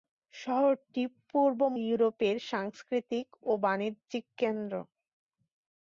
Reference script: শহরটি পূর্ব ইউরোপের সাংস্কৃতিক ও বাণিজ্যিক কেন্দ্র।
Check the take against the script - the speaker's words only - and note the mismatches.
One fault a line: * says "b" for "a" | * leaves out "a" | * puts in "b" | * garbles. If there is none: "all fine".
all fine